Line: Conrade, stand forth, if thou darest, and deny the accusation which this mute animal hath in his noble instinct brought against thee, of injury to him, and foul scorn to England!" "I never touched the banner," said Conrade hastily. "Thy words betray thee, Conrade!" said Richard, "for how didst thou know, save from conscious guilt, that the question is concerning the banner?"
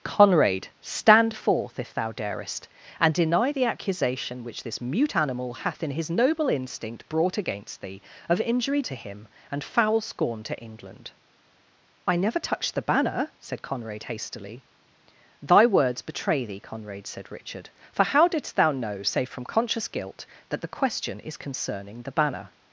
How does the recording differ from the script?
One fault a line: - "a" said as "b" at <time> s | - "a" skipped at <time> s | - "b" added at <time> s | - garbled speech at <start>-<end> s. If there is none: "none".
none